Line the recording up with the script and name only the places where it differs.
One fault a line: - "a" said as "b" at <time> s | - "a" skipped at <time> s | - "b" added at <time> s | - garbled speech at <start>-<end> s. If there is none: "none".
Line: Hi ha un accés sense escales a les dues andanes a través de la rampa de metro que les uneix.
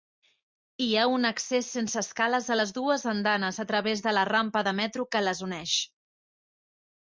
none